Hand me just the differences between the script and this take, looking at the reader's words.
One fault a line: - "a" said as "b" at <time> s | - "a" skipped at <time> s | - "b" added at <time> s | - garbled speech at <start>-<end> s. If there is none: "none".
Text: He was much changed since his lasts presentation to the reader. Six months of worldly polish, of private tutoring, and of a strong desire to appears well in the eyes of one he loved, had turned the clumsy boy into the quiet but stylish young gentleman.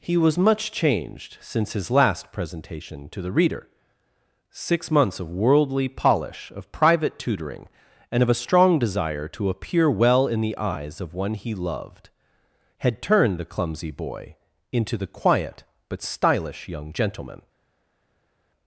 - "lasts" said as "last" at 1.9 s
- "appears" said as "appear" at 9.5 s